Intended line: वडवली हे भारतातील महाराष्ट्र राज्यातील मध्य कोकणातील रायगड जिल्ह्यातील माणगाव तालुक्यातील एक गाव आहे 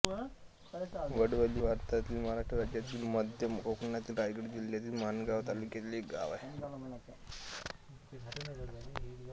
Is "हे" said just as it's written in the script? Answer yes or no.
no